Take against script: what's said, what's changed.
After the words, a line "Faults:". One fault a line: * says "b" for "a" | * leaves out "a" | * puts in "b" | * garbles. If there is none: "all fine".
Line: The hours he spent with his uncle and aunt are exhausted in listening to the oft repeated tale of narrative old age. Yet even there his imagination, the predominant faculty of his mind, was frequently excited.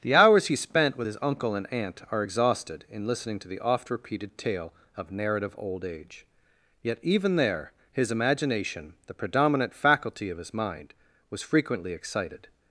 The hours he spent with his uncle and aunt are exhausted in listening to the oft repeated tale of narrative old age. Yet even there his imagination, the predominant faculty of his mind, was frequently excited.
Faults:
all fine